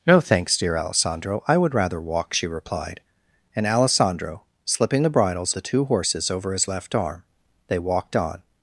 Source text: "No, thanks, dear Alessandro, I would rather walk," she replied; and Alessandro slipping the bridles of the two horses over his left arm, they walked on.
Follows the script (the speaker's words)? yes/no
no